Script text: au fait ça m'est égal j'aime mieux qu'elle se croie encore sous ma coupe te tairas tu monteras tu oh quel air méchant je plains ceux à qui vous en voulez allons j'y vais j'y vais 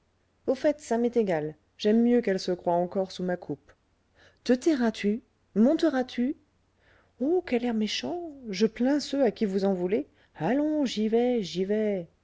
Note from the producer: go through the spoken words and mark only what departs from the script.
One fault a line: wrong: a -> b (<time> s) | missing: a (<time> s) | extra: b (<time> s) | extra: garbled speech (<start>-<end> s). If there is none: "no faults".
no faults